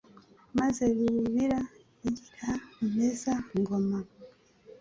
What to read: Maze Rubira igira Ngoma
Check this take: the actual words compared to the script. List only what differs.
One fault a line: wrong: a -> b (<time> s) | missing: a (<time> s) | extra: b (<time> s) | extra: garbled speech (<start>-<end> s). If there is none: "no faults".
extra: Rumeza (2.8 s)